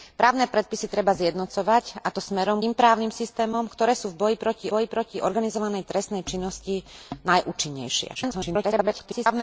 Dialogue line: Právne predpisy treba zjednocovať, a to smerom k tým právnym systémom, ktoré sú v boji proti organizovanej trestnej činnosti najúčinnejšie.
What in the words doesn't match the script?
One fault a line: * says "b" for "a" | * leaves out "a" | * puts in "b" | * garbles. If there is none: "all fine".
* leaves out "k"
* puts in "boji proti"
* garbles